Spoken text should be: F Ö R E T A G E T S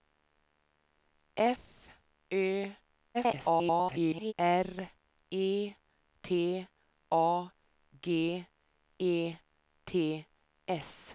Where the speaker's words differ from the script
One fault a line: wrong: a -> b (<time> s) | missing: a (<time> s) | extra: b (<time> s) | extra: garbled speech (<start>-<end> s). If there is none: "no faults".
extra: garbled speech (3.1-4.3 s)